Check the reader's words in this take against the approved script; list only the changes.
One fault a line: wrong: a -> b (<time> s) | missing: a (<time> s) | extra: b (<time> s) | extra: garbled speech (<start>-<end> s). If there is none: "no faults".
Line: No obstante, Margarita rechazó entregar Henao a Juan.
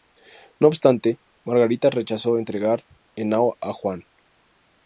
no faults